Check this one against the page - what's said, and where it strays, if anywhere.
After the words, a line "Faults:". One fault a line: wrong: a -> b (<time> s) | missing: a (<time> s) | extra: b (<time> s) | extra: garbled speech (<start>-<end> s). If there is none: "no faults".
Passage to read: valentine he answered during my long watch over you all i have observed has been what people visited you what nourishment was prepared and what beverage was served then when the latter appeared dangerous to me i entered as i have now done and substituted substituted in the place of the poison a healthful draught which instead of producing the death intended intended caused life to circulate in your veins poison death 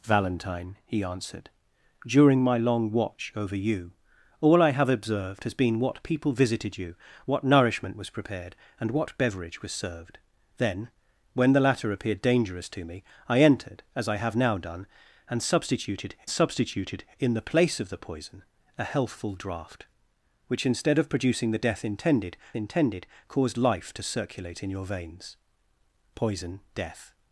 valentine he answered during my long watch over you all i have observed has been what people visited you what nourishment was prepared and what beverage was served then when the latter appeared dangerous to me i entered as i have now done and substituted substituted in the place of the poison a healthful draught which instead of producing the death intended intended caused life to circulate in your veins poison death
Faults:
no faults